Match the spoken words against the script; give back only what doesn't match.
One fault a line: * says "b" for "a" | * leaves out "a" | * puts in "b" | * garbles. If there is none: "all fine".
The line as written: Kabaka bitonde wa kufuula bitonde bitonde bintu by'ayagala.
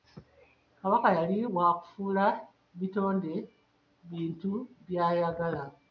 * says "yali" for "bitonde"
* leaves out "bitonde"